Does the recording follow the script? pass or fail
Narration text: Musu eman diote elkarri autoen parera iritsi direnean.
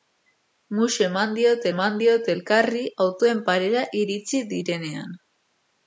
fail